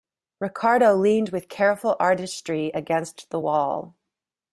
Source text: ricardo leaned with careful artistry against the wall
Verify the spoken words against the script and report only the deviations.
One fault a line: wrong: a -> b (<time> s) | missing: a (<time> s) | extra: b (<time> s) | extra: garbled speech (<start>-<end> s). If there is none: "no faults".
no faults